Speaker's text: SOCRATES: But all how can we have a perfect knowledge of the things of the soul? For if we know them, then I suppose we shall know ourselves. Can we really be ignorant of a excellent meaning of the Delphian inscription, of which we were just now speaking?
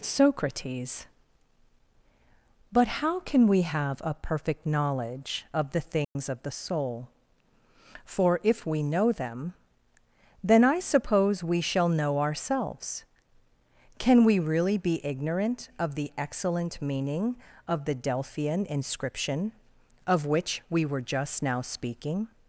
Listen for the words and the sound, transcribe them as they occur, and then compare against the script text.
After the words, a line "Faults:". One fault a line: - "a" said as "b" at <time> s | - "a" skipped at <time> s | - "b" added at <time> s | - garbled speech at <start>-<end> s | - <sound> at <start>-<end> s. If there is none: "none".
SOCRATES: But how can we have a perfect knowledge of the things of the soul? For if we know them, then I suppose we shall know ourselves. Can we really be ignorant of the excellent meaning of the Delphian inscription, of which we were just now speaking?
Faults:
- "all" skipped at 2.9 s
- dropout at 6.0-6.2 s
- "a" said as "the" at 15.9 s